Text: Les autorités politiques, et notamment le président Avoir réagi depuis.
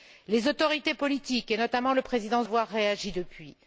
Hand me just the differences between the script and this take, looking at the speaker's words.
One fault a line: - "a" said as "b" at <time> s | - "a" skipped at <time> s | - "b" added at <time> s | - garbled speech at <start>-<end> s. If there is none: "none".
none